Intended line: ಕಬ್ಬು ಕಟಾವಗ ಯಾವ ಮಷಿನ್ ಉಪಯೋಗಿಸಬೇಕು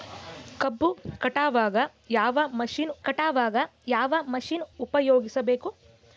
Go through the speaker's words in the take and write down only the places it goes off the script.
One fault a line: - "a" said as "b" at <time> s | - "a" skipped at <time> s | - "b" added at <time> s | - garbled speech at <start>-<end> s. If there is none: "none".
- "ಕಟಾವಗ ಯಾವ ಮಷಿನ್" added at 3.0 s